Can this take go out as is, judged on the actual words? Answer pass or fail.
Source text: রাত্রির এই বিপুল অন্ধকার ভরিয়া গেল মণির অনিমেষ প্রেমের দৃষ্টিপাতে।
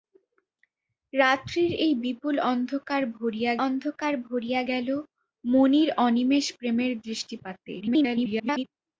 fail